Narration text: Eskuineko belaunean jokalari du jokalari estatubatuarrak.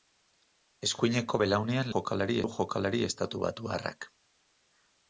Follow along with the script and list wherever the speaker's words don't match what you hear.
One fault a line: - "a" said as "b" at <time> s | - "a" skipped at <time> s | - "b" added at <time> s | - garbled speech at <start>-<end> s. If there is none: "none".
none